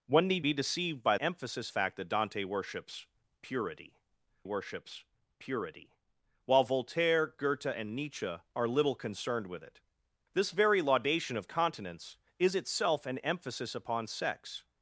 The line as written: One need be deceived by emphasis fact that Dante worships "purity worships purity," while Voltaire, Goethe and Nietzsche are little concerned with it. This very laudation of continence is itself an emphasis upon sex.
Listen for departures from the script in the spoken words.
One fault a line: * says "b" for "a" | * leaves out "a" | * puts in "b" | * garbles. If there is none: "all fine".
all fine